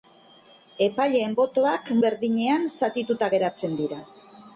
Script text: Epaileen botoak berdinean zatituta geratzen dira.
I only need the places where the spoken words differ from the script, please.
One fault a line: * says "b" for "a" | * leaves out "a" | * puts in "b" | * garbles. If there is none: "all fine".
all fine